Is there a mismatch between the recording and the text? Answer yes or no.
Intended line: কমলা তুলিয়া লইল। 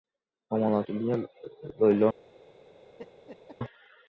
no